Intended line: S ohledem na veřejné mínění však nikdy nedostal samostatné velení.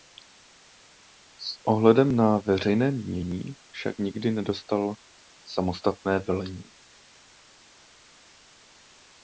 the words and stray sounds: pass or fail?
pass